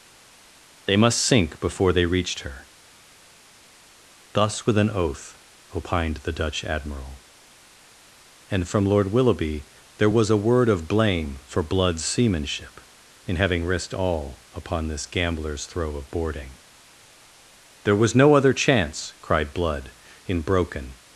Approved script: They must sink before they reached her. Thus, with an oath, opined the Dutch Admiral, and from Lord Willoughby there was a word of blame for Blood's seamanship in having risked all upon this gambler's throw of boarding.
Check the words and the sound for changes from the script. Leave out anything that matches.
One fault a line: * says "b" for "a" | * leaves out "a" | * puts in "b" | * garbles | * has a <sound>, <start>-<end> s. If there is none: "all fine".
* puts in "There was no other chance cried Blood in broken"